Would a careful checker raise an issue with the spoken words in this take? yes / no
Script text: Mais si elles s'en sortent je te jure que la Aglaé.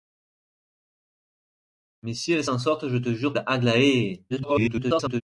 yes